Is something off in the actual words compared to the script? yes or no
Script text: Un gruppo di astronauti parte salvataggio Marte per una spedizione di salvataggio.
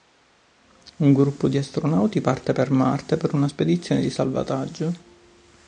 yes